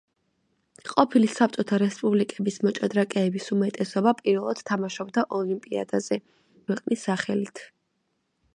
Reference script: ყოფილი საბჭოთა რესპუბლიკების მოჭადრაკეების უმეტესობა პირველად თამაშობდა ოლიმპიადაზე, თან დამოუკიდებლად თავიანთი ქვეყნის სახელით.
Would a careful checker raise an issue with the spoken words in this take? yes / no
yes